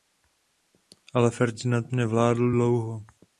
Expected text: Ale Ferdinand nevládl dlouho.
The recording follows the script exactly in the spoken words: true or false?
true